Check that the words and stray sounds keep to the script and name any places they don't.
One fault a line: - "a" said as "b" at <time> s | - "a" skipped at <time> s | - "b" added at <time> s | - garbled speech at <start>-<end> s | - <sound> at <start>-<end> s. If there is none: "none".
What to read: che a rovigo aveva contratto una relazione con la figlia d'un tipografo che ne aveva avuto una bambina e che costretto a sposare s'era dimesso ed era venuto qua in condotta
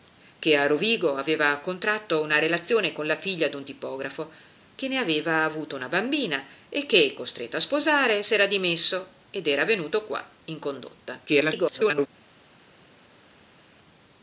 - garbled speech at 11.3-12.1 s